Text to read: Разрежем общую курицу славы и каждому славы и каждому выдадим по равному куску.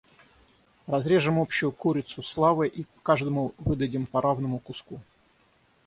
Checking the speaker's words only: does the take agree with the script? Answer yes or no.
no